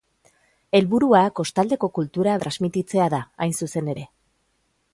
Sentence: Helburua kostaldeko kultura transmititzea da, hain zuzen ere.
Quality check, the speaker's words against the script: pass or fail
pass